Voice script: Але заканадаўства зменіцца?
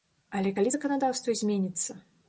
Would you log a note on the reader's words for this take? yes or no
yes